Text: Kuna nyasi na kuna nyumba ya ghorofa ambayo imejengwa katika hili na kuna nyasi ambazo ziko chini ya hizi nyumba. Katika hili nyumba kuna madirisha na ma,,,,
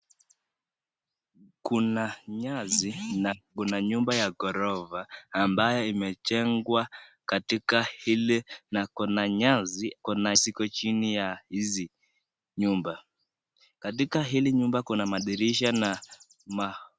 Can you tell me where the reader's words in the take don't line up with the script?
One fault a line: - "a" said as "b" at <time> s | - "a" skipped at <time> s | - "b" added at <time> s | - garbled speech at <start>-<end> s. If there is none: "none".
- "ambazo" said as "kuna" at 10.0 s